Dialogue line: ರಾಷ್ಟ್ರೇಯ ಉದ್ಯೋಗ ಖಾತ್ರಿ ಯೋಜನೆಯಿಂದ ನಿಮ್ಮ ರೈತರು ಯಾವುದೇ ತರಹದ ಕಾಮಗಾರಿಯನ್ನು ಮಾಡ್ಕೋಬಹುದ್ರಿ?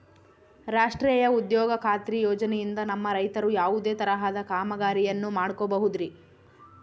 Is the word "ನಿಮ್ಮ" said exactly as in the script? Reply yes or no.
no